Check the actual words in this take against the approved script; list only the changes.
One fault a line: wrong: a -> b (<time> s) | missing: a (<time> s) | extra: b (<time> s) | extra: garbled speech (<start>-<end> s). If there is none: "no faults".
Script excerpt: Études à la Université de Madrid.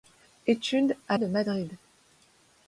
missing: la Université (1.2 s)